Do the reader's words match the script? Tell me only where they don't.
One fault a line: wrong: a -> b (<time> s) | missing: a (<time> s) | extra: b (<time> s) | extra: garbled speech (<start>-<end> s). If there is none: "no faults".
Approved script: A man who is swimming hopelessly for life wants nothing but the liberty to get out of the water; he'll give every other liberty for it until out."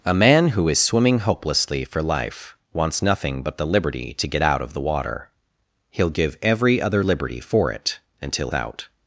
no faults